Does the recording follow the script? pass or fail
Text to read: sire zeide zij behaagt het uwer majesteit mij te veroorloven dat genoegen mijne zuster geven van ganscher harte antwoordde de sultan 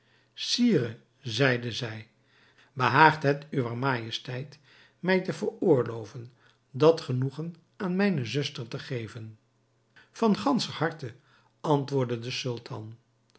fail